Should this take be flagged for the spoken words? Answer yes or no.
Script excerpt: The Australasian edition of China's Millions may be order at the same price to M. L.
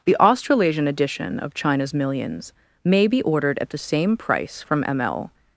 yes